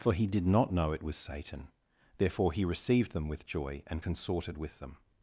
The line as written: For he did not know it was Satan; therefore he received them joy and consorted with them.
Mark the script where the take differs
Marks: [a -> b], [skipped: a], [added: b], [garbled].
For he did not know it was Satan; therefore he received them [added: with] joy and consorted with them.